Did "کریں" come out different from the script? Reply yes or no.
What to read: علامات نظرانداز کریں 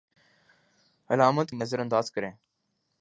no